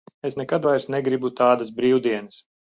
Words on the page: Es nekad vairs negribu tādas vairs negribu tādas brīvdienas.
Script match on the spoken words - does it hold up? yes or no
no